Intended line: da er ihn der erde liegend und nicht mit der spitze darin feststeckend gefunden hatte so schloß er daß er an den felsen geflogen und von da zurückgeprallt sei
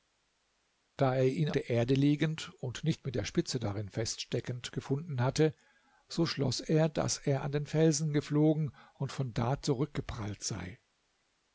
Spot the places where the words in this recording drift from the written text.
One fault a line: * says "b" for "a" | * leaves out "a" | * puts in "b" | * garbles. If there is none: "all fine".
all fine